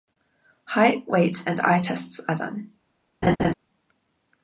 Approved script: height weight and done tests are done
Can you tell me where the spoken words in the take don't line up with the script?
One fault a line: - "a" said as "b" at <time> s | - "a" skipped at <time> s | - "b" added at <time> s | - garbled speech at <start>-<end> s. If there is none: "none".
- "done" said as "eye" at 1.6 s